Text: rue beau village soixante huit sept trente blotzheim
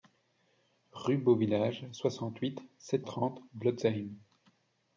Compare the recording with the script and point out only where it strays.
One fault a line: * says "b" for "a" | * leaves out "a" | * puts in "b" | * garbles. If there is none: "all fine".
all fine